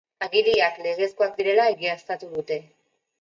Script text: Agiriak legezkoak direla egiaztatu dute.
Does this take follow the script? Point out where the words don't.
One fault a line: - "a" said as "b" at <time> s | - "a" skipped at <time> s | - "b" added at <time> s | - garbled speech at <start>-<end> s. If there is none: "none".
none